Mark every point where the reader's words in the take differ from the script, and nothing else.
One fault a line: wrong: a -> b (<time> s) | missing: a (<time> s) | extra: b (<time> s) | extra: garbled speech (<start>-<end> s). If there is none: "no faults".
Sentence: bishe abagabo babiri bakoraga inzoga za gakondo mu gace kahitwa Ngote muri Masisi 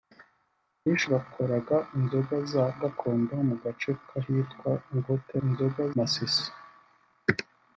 missing: abagabo babiri (1.1 s)
wrong: muri -> inzoga (5.4 s)